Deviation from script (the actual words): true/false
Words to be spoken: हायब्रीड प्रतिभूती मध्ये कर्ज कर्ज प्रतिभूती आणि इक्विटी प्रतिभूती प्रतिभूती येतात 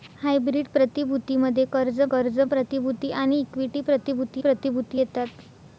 false